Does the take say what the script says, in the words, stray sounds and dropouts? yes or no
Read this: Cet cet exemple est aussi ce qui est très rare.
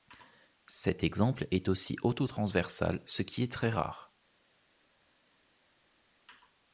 no